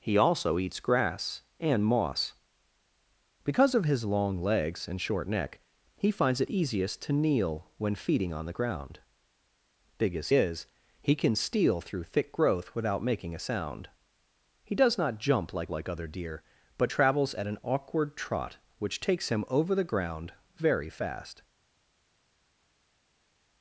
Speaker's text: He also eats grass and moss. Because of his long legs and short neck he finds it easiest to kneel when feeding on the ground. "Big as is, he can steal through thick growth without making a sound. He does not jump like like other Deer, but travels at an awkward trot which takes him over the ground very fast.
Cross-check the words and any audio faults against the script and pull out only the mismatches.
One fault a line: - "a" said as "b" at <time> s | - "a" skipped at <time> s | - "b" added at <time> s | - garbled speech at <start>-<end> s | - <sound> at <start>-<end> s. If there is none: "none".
none